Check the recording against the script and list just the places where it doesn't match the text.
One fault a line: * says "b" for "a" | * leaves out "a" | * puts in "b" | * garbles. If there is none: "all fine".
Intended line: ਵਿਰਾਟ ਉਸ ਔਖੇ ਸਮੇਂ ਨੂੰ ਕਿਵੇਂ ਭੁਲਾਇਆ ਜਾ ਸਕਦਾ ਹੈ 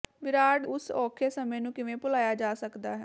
all fine